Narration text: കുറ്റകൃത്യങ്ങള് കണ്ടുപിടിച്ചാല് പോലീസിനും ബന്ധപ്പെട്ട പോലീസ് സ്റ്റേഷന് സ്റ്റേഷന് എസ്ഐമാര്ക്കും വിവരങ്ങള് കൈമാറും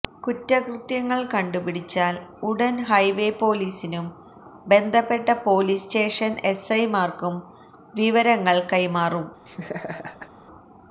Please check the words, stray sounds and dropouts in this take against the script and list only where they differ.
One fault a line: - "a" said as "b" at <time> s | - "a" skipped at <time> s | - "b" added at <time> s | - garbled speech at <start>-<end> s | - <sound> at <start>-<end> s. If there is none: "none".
- "ഉടന് ഹൈവേ" added at 2.4 s
- "സ്റ്റേഷന്" skipped at 6.4 s
- laugh at 9.5-10.3 s